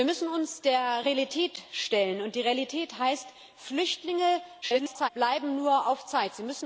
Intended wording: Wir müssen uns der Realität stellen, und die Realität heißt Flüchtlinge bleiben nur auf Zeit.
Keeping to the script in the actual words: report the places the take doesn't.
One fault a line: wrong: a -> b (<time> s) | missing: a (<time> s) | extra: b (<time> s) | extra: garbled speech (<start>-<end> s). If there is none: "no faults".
extra: garbled speech (4.6-5.1 s)